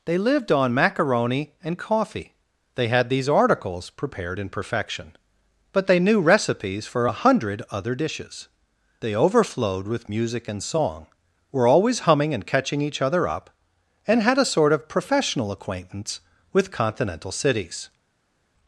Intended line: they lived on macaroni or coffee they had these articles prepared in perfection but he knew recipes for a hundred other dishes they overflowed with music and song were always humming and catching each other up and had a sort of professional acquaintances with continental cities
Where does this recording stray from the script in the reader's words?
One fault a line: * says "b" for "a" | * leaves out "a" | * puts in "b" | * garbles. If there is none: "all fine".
* says "and" for "or"
* says "they" for "he"
* says "acquaintance" for "acquaintances"